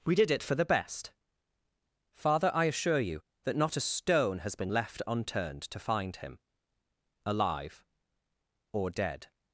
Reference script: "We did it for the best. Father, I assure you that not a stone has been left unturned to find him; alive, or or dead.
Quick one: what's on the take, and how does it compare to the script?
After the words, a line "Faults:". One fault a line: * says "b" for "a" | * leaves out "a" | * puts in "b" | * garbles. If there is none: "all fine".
"We did it for the best. Father, I assure you that not a stone has been left unturned to find him; alive, or dead.
Faults:
* leaves out "or"